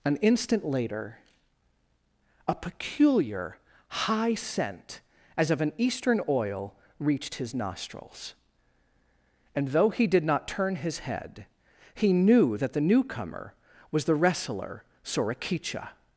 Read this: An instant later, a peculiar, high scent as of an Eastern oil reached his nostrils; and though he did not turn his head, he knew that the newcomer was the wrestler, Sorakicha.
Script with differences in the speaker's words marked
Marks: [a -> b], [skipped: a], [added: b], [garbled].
An instant later, a peculiar, high scent as of an Eastern oil reached his nostrils; and though he did not turn his head, he knew that the newcomer was the wrestler, Sorakicha.